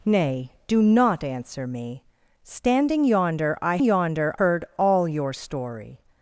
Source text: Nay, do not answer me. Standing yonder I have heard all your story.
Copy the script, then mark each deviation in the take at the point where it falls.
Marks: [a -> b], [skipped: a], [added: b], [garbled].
Nay, do not answer me. Standing yonder I [have -> yonder] heard all your story.